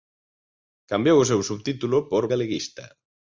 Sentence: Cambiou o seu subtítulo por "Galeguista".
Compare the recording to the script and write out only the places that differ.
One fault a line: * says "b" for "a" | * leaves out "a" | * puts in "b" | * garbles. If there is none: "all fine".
all fine